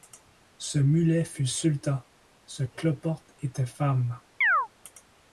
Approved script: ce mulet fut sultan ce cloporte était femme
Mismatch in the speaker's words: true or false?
false